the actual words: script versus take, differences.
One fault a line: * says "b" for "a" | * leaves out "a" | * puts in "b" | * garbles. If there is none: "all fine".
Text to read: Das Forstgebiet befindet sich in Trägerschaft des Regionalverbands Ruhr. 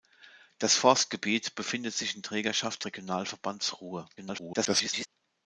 * leaves out "des"
* garbles